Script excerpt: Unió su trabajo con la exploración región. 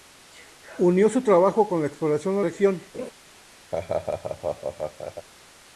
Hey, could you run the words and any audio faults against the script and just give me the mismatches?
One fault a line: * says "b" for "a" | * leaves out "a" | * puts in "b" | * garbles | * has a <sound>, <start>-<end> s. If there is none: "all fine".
* has a laugh, 2.9-3.1 s
* has a laugh, 3.7-5.3 s